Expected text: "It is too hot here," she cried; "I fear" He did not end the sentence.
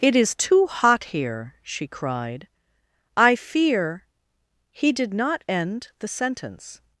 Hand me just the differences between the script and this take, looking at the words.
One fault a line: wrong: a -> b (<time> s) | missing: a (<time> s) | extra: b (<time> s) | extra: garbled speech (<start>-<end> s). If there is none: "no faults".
no faults